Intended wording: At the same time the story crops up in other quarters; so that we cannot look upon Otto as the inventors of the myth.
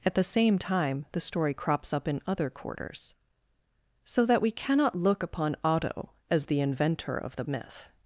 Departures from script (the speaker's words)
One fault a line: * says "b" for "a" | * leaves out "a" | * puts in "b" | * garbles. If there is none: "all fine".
* says "inventor" for "inventors"